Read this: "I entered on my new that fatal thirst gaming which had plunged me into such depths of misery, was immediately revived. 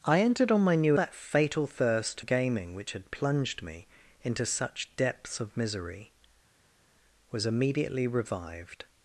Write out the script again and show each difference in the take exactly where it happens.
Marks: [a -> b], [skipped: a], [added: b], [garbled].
"I entered on my new that fatal thirst gaming which had plunged me into such depths of misery, was immediately revived.